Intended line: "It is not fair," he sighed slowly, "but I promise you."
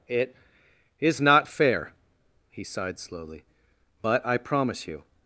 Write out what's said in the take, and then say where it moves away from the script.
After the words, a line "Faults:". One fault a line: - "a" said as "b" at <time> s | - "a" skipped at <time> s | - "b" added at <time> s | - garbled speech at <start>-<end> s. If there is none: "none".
"It is not fair," he sighed slowly, "but I promise you."
Faults:
none